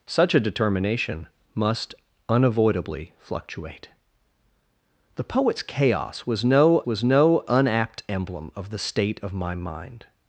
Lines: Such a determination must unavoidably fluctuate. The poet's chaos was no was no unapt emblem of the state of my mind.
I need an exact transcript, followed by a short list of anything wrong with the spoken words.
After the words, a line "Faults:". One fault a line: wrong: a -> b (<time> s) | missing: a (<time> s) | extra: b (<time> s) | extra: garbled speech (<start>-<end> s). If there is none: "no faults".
Such a determination must unavoidably fluctuate. The poet's chaos was no was no unapt emblem of the state of my mind.
Faults:
no faults